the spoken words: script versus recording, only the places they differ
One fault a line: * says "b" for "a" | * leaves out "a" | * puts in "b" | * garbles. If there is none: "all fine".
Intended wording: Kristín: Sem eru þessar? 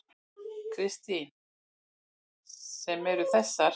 all fine